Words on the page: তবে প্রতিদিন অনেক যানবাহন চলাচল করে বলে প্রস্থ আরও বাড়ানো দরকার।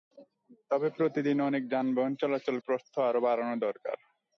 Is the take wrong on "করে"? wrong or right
wrong